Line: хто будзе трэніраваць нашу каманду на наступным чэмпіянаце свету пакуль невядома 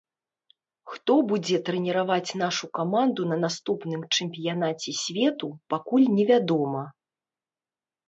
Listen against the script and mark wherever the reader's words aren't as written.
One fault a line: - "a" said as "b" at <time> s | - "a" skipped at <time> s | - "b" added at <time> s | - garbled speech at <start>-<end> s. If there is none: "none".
none